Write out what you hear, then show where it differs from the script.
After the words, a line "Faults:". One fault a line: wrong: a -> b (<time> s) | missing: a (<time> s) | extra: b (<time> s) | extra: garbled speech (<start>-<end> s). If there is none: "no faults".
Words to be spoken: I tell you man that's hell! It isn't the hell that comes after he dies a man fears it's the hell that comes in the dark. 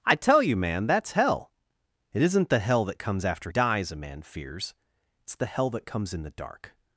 I tell you man that's hell! It isn't the hell that comes after dies a man fears it's the hell that comes in the dark.
Faults:
missing: he (3.5 s)